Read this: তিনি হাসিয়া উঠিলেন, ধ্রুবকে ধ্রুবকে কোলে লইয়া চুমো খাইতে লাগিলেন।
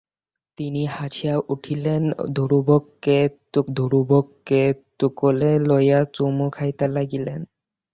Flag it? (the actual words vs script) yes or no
no